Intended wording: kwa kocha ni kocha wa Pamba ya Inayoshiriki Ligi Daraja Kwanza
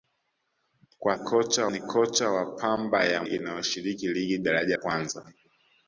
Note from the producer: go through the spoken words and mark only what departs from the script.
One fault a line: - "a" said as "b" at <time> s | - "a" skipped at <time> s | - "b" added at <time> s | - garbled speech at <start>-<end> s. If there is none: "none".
none